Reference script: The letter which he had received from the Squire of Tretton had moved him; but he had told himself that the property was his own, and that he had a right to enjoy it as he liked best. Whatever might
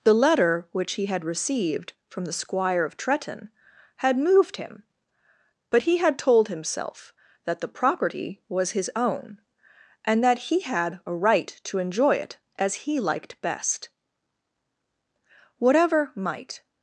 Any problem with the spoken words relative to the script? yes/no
no